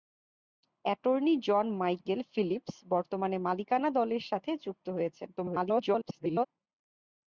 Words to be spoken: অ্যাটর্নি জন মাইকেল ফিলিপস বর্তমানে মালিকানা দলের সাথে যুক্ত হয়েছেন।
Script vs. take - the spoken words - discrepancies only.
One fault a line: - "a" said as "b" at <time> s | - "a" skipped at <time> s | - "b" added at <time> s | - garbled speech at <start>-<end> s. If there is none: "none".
- garbled speech at 5.4-6.5 s